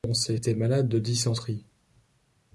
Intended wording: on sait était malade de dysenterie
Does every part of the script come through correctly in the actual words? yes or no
yes